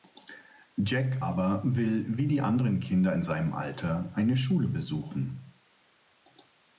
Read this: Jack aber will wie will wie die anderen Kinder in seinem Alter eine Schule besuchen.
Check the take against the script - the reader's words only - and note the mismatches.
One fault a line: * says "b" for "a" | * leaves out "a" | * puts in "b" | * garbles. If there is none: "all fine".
* leaves out "will wie"